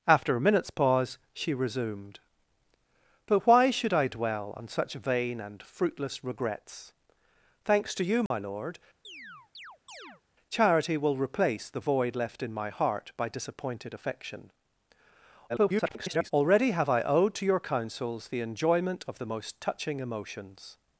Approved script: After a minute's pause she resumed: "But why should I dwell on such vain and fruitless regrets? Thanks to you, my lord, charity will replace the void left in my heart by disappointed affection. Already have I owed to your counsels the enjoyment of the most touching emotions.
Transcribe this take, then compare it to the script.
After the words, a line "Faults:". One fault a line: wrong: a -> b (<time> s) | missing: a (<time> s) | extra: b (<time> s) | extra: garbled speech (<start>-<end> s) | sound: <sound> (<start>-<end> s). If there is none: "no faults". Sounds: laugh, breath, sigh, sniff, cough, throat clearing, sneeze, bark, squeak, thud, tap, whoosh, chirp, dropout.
After a minute's pause she resumed: "But why should I dwell on such vain and fruitless regrets? Thanks to you, my lord, charity will replace the void left in my heart by disappointed affection. [garbled] Already have I owed to your counsels the enjoyment of the most touching emotions.
Faults:
sound: dropout (8.3-8.3 s)
sound: chirp (9.0-10.2 s)
extra: garbled speech (15.5-16.3 s)